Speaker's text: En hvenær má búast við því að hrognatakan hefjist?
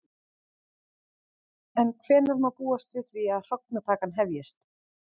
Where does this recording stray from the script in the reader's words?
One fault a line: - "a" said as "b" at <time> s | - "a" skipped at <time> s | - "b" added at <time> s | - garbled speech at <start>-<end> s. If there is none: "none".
none